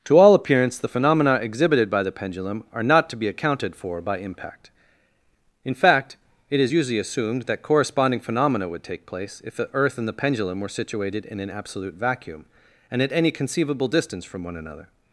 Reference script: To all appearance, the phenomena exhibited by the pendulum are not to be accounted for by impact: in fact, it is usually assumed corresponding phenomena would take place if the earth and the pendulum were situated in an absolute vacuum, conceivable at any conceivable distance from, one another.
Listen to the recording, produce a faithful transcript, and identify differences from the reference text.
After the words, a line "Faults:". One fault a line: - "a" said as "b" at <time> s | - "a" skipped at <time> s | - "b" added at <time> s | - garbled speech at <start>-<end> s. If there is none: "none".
To all appearance, the phenomena exhibited by the pendulum are not to be accounted for by impact: in fact, it is usually assumed that corresponding phenomena would take place if the earth and the pendulum were situated in an absolute vacuum, and at any conceivable distance from, one another.
Faults:
- "that" added at 7.4 s
- "conceivable" said as "and" at 12.9 s